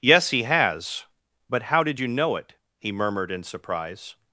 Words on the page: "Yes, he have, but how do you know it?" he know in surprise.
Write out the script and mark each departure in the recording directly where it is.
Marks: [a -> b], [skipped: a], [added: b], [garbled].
"Yes, he [have, -> has] but how [do -> did] you know it?" he [know -> murmured] in surprise.